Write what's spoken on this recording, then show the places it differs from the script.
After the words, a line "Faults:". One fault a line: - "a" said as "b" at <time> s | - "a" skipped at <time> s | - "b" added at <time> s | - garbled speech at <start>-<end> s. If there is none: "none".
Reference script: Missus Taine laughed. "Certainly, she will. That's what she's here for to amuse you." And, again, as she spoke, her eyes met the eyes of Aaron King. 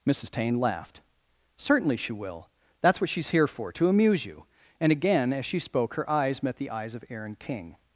Missus Taine laughed. "Certainly, she will. That's what she's here for to amuse you." And, again, as she spoke, her eyes met the eyes of Aaron King.
Faults:
none